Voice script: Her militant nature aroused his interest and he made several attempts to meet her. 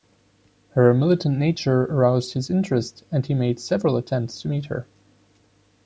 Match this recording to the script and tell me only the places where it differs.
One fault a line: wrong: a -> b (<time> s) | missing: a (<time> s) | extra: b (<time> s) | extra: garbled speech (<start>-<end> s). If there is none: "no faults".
no faults